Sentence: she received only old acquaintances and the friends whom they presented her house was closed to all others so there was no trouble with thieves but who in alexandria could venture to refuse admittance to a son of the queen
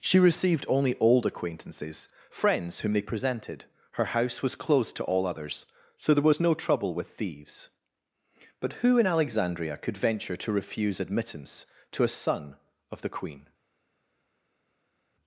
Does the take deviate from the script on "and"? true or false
true